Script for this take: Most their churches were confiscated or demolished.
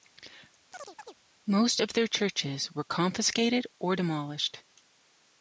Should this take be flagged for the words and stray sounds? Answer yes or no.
yes